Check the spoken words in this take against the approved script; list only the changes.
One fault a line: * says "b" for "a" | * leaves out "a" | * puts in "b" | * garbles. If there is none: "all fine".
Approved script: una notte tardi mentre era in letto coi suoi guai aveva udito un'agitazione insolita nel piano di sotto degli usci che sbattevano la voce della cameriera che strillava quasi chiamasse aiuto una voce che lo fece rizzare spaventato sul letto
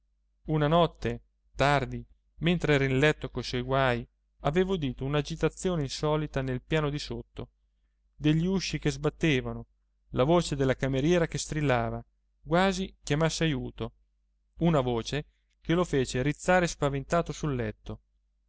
all fine